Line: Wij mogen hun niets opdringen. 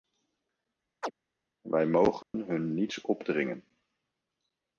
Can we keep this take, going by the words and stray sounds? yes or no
no